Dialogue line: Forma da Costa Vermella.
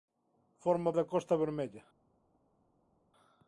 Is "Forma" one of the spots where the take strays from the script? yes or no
no